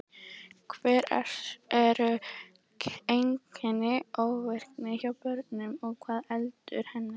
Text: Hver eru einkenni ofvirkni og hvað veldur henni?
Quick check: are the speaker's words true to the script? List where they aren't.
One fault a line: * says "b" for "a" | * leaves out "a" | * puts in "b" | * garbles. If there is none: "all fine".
* puts in "hjá börnum"